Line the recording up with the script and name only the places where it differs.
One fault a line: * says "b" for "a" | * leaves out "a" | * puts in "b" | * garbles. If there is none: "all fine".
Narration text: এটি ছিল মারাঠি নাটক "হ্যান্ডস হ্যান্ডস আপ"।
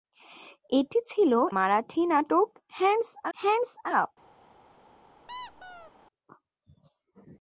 all fine